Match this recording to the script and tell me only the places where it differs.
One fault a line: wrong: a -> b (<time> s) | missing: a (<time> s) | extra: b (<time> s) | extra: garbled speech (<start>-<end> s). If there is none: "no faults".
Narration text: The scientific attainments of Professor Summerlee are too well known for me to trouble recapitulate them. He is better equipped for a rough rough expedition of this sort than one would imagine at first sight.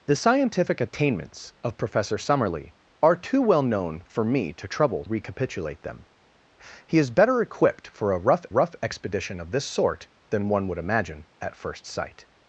no faults